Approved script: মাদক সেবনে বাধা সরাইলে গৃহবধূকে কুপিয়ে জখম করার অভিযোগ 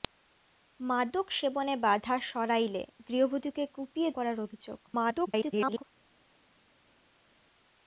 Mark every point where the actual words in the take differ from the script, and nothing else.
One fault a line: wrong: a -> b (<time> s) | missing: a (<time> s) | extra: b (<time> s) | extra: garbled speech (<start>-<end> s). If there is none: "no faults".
missing: জখম (4.1 s)
extra: garbled speech (4.9-5.8 s)